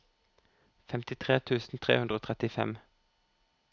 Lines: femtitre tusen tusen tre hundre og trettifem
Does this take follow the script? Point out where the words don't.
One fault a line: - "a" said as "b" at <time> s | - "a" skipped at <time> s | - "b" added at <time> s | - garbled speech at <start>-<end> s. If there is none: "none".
- "tusen" skipped at 1.8 s